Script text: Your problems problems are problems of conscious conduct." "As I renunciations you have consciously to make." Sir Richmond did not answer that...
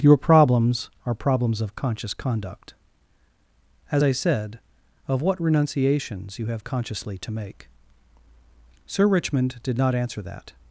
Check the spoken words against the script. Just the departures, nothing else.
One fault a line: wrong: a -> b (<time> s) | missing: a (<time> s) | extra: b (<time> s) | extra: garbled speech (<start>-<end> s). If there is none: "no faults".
missing: problems (0.9 s)
extra: said Of what (4.1 s)